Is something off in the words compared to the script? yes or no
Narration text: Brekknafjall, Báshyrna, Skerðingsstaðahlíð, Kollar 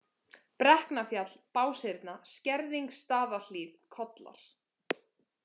no